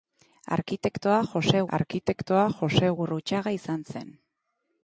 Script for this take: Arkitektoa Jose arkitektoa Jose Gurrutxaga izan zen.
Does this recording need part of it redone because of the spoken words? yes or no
no